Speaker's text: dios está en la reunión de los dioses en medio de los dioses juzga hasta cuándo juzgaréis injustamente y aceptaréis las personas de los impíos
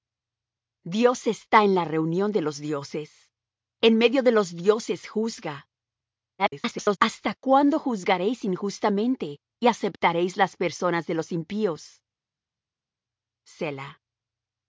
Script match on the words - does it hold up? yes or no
no